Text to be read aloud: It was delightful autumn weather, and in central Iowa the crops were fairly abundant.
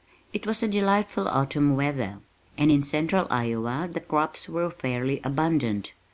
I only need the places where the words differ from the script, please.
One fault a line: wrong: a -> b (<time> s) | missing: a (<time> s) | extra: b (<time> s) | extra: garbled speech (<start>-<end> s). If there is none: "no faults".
no faults